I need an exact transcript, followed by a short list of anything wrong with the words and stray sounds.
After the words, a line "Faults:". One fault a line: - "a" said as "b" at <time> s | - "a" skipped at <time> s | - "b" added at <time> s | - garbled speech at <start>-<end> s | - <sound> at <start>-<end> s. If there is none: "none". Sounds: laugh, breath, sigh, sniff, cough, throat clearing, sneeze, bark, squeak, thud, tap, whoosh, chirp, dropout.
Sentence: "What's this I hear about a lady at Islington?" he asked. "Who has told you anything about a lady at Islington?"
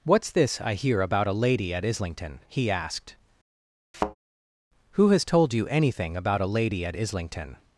"What's this I hear about a lady at Islington?" he asked. "Who has told you anything about a lady at Islington?"
Faults:
- thud at 3.9-4.1 s